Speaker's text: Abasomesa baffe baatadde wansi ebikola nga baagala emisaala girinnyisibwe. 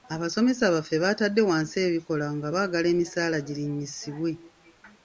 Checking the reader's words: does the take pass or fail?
pass